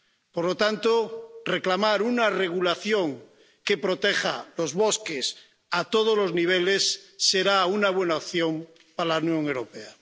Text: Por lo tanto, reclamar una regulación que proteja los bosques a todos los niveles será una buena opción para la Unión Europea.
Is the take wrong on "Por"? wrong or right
right